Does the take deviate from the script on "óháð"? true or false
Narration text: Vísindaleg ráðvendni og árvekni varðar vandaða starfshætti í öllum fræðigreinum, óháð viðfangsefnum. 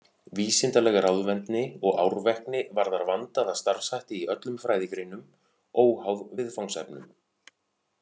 false